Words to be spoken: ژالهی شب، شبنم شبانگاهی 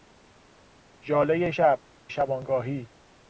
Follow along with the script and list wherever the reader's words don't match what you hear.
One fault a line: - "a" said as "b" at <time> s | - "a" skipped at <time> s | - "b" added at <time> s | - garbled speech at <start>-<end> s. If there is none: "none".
- "شبنم" skipped at 1.8 s